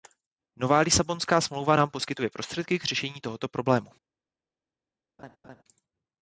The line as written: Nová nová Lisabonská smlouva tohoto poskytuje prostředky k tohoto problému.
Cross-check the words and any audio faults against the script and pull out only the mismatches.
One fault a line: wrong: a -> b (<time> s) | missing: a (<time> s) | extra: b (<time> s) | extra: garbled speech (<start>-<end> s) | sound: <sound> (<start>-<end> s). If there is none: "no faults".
missing: nová (0.8 s)
wrong: tohoto -> nám (1.7 s)
extra: řešení (2.8 s)
sound: laugh (5.2-5.6 s)